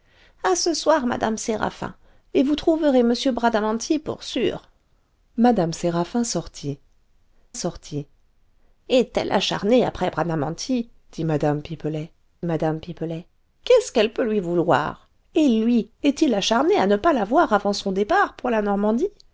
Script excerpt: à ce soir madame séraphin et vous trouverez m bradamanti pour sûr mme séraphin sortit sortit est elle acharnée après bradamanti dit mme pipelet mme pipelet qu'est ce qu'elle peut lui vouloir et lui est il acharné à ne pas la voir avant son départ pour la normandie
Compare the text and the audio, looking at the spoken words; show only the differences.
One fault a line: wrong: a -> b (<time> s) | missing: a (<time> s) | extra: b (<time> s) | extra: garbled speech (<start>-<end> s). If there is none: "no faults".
no faults